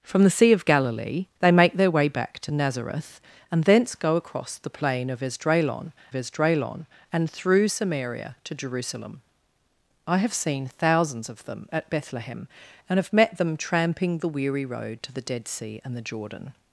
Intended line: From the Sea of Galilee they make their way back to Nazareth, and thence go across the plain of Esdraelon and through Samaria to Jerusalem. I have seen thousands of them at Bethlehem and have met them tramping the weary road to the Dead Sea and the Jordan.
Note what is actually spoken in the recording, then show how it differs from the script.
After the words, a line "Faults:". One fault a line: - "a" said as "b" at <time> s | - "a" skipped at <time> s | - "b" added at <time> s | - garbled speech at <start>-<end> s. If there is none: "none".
From the Sea of Galilee they make their way back to Nazareth, and thence go across the plain of Esdraelon Esdraelon and through Samaria to Jerusalem. I have seen thousands of them at Bethlehem and have met them tramping the weary road to the Dead Sea and the Jordan.
Faults:
- "Esdraelon" added at 6.1 s